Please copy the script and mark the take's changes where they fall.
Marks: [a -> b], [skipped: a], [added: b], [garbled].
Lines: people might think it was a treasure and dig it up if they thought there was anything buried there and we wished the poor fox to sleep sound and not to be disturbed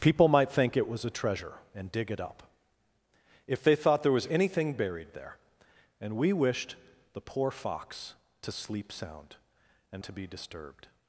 people might think it was a treasure and dig it up if they thought there was anything buried there and we wished the poor fox to sleep sound and [skipped: not] to be disturbed